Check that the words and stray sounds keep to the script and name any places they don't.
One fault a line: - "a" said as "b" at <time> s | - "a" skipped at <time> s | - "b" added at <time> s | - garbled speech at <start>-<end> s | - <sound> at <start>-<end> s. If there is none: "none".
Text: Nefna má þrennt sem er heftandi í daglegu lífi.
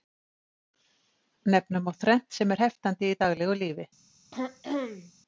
- throat clearing at 4.3-5.1 s